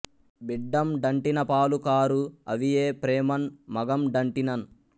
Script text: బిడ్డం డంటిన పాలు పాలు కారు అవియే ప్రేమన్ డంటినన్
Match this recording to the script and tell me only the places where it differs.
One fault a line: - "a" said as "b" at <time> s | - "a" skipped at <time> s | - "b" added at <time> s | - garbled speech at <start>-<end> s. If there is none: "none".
- "పాలు" skipped at 1.8 s
- "మగం" added at 3.7 s